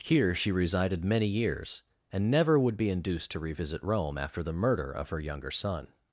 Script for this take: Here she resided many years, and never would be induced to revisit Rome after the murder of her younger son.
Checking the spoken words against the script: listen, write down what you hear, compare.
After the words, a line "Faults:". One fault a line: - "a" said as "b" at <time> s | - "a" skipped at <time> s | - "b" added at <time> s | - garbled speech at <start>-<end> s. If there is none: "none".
Here she resided many years, and never would be induced to revisit Rome after the murder of her younger son.
Faults:
none